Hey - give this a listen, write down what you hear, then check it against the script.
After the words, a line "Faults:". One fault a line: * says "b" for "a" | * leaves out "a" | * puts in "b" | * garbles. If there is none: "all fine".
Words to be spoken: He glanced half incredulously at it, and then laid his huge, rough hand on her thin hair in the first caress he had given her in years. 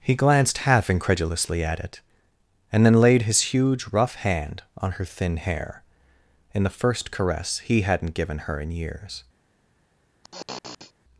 He glanced half incredulously at it, and then laid his huge, rough hand on her thin hair in the first caress he hadn't given her in years.
Faults:
* says "hadn't" for "had"